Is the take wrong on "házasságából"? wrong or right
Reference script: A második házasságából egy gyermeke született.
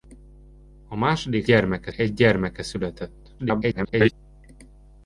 wrong